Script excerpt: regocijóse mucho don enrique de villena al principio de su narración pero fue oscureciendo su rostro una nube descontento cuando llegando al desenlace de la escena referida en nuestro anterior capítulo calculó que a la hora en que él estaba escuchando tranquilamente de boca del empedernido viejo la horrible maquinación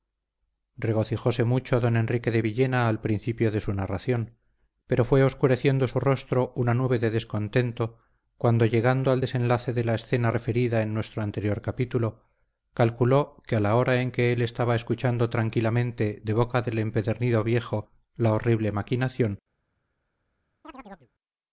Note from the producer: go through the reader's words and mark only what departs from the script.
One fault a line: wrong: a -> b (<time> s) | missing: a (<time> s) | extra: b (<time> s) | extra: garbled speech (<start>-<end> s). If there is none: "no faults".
extra: de (7.0 s)